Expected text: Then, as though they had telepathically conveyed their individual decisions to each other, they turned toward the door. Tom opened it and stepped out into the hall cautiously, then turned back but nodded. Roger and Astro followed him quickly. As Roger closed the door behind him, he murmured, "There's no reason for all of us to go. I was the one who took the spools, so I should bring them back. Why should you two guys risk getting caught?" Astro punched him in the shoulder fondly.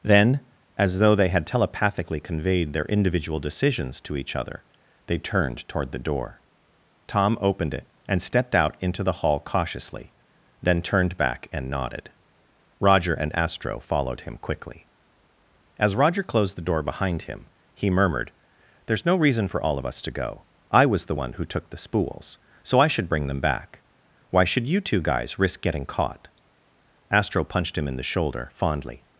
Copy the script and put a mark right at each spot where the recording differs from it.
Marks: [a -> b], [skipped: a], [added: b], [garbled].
Then, as though they had telepathically conveyed their individual decisions to each other, they turned toward the door. Tom opened it and stepped out into the hall cautiously, then turned back [but -> and] nodded. Roger and Astro followed him quickly. As Roger closed the door behind him, he murmured, "There's no reason for all of us to go. I was the one who took the spools, so I should bring them back. Why should you two guys risk getting caught?" Astro punched him in the shoulder fondly.